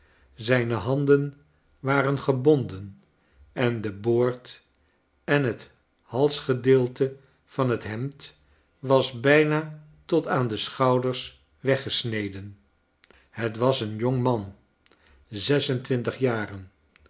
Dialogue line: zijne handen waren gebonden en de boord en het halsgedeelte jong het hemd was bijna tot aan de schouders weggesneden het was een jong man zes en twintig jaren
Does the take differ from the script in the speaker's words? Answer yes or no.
yes